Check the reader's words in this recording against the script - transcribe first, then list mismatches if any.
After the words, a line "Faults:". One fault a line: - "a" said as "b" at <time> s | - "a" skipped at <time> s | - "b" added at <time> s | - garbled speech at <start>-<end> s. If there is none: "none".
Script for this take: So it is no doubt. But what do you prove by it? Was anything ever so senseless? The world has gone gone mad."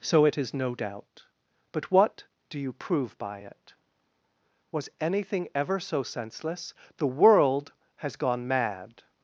So it is no doubt. But what do you prove by it? Was anything ever so senseless? The world has gone mad."
Faults:
- "gone" skipped at 8.5 s